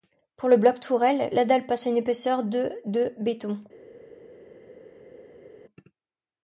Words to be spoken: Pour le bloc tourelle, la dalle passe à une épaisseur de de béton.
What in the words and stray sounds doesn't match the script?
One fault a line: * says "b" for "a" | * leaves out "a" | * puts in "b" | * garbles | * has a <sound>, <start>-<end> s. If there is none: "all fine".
all fine